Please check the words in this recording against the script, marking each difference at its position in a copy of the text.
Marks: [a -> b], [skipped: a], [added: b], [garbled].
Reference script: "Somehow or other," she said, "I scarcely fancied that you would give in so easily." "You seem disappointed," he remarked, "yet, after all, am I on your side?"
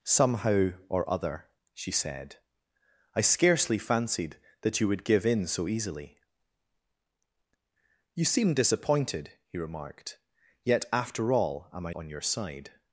"Somehow or other," she said, "I scarcely fancied that you would give in so easily." "You seem disappointed," he remarked, "yet, after all, am I on your side?"